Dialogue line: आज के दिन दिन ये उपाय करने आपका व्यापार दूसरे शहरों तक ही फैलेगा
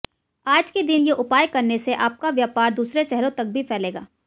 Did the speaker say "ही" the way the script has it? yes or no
no